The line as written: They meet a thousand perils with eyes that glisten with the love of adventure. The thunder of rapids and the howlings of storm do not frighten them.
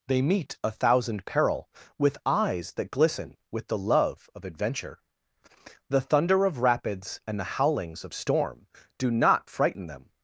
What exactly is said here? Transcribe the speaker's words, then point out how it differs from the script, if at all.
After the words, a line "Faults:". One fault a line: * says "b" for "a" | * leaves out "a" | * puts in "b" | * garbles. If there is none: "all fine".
They meet a thousand peril with eyes that glisten with the love of adventure. The thunder of rapids and the howlings of storm do not frighten them.
Faults:
* says "peril" for "perils"